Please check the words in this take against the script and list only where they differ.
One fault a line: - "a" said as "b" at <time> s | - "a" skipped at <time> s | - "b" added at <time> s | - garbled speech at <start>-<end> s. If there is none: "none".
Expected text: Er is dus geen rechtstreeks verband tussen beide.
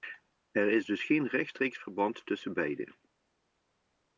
none